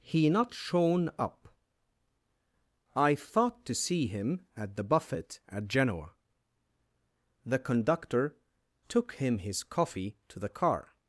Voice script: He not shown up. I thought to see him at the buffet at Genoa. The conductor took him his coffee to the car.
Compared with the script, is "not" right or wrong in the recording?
right